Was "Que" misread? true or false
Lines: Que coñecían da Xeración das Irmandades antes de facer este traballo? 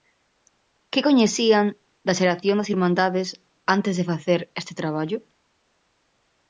false